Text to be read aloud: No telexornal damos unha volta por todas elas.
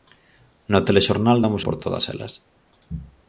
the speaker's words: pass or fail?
fail